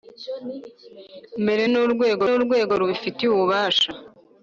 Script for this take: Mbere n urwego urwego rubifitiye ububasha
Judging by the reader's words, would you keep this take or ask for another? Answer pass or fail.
pass